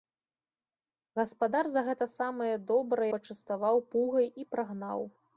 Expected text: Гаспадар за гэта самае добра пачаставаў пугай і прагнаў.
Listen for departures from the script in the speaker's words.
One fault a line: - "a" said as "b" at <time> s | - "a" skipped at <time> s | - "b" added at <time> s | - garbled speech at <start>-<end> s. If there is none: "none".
none